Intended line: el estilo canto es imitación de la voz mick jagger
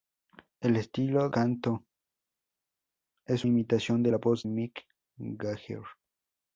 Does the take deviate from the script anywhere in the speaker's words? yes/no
no